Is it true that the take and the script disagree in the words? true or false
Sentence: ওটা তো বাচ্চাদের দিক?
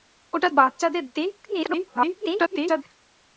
true